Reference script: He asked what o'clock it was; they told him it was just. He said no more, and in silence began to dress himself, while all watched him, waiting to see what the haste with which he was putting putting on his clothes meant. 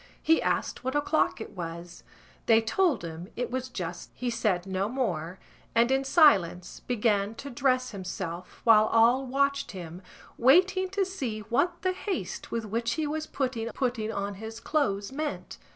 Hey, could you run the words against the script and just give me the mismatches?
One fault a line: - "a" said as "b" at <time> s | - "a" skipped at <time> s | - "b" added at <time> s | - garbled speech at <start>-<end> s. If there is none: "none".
none